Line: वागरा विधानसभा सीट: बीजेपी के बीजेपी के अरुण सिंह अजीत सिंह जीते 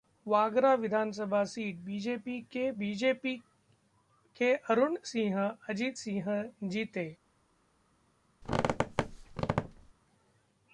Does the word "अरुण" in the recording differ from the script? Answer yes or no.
no